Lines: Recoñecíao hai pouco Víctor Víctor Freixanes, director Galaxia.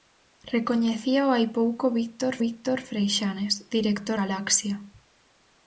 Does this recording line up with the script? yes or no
yes